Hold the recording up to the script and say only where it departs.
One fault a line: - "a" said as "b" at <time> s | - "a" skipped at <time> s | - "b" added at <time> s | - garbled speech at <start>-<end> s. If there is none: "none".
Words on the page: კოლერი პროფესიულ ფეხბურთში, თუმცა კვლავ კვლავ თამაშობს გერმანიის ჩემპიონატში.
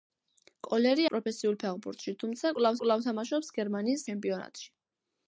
none